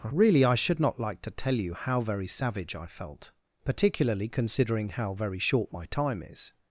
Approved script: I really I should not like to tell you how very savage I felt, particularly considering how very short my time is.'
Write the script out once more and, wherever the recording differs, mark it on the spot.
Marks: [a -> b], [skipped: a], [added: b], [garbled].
[skipped: I] really I should not like to tell you how very savage I felt, particularly considering how very short my time is.'